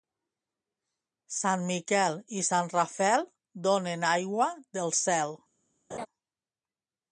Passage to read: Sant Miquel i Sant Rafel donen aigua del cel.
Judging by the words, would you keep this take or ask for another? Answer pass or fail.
pass